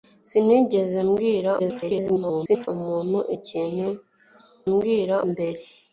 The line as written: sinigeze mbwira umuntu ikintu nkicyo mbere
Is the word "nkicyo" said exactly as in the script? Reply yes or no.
no